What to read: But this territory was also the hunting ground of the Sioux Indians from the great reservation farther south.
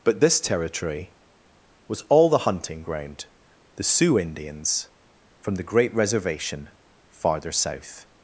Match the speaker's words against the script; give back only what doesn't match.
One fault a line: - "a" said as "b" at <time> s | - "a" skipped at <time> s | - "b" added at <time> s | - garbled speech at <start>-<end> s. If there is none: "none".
- "also" said as "all" at 2.1 s
- "of" skipped at 3.3 s